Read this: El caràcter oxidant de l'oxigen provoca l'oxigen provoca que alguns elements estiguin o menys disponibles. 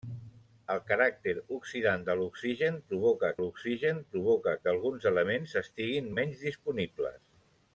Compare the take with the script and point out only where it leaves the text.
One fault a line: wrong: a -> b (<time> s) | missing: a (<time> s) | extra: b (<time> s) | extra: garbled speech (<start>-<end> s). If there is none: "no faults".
no faults